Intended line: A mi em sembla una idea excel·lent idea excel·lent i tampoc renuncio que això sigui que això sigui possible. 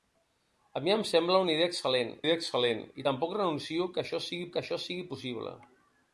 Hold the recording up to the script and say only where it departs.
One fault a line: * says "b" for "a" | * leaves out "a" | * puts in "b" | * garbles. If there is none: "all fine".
all fine